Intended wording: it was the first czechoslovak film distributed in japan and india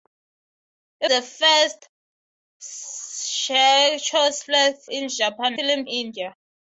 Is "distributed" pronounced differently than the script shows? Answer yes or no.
yes